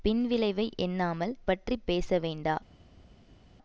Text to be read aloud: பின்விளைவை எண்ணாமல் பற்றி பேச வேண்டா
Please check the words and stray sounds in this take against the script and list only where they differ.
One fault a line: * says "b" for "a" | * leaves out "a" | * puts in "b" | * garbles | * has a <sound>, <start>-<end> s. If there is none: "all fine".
all fine